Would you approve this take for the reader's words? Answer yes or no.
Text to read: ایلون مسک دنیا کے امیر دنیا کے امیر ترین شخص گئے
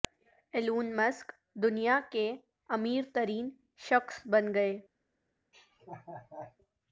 no